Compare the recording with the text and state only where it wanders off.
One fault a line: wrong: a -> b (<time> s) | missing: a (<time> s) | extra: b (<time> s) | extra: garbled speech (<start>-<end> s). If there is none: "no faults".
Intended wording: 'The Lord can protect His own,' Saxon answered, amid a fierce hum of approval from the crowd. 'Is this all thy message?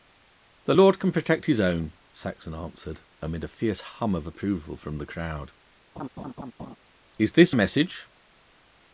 missing: all thy (7.6 s)